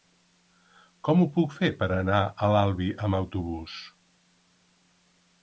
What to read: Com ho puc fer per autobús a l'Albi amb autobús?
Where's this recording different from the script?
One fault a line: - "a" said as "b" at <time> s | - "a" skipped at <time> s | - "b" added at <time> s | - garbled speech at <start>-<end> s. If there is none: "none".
- "autobús" said as "anar" at 2.0 s